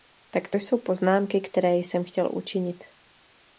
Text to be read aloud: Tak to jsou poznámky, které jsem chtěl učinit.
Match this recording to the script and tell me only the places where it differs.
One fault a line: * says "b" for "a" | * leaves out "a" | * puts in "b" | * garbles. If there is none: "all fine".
all fine